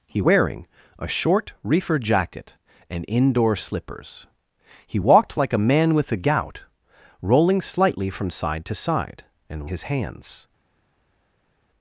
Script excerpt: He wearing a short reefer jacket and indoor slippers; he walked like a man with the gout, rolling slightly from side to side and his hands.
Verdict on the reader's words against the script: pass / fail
pass